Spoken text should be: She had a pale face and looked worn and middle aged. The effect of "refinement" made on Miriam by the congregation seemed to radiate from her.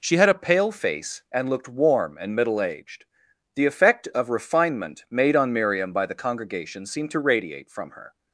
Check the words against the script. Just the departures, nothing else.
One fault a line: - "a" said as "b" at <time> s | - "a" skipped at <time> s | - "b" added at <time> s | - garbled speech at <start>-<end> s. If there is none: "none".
- "worn" said as "warm" at 1.7 s